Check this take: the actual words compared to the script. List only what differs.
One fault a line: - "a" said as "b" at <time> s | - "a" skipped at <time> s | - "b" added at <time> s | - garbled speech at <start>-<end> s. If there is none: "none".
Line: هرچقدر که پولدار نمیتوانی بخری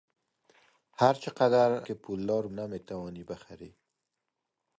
none